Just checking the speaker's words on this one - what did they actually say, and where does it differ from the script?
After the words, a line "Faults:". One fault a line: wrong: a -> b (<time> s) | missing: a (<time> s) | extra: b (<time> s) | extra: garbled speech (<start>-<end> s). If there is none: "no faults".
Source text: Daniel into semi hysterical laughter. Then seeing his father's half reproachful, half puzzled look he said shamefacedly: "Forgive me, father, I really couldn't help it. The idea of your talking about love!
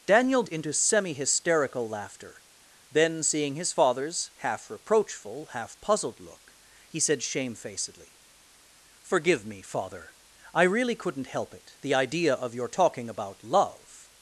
Daniel into semi hysterical laughter. Then seeing his father's half reproachful, half puzzled look he said shamefacedly: "Forgive me, father, I really couldn't help it. The idea of your talking about love!
Faults:
no faults